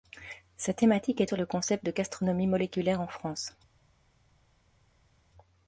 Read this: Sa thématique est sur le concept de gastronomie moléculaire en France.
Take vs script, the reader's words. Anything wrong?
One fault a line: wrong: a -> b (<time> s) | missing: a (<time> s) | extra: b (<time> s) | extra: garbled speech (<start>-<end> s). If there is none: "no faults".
no faults